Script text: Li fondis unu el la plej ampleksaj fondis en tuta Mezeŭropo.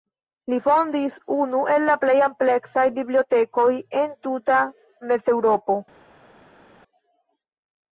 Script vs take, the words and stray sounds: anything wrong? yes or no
yes